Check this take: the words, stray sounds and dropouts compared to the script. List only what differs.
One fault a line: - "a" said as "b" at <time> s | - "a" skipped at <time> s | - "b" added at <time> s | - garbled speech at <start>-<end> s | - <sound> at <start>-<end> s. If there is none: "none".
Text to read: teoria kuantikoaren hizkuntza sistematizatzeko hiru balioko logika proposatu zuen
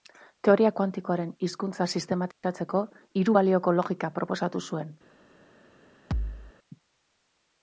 - dropout at 2.3-2.4 s
- thud at 6.1-6.5 s